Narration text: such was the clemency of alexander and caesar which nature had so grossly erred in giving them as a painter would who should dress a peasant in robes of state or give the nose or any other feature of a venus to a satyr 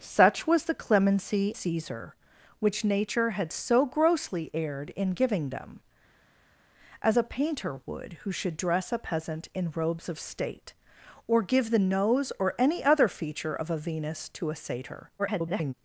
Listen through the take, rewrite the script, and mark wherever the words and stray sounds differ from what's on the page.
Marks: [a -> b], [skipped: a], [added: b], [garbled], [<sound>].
such was the clemency [skipped: of alexander and] caesar which nature had so grossly erred in giving them as a painter would who should dress a peasant in robes of state or give the nose or any other feature of a venus to a satyr [garbled]